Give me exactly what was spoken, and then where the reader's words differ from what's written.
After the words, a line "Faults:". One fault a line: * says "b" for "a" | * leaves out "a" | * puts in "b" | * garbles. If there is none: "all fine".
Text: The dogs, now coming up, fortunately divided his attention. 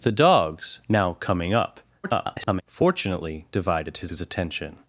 The dogs, now coming up, [garbled] fortunately divided his his attention.
Faults:
* garbles
* puts in "his"